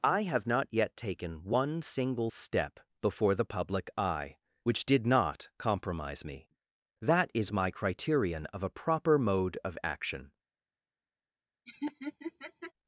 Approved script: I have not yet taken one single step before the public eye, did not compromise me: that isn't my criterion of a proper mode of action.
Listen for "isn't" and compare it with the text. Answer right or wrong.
wrong